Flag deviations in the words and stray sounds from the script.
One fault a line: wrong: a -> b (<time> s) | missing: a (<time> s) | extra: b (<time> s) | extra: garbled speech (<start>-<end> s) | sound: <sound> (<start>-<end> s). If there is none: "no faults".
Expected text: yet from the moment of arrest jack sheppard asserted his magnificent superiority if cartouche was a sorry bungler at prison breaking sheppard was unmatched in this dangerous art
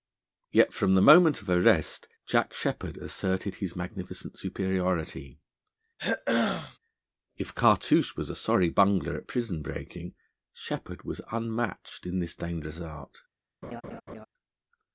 sound: throat clearing (6.0-6.8 s)
sound: laugh (13.6-14.3 s)